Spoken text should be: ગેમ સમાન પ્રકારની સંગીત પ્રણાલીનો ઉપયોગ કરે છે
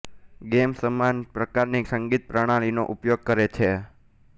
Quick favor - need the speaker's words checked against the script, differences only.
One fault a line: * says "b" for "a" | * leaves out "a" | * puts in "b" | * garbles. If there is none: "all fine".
all fine